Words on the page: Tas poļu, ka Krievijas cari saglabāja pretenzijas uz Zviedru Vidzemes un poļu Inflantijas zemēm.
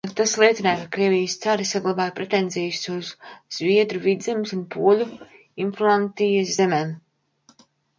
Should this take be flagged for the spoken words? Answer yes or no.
yes